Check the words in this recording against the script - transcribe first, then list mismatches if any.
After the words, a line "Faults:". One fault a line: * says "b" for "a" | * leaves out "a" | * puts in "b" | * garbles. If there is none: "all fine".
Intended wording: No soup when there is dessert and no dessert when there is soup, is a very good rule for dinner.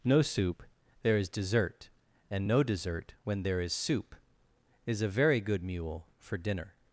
No soup there is dessert and no dessert when there is soup, is a very good mule for dinner.
Faults:
* leaves out "when"
* says "mule" for "rule"